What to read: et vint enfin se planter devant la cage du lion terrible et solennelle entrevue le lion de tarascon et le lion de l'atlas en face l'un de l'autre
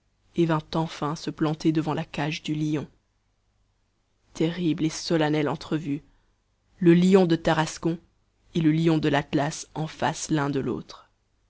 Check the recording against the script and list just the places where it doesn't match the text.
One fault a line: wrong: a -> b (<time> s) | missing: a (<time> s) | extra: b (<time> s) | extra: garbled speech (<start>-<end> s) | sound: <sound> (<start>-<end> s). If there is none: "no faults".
no faults